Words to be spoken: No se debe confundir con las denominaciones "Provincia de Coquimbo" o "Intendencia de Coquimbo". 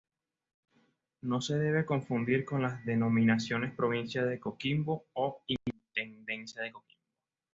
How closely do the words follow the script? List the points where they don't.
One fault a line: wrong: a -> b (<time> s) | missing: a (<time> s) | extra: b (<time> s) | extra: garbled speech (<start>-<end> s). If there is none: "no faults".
no faults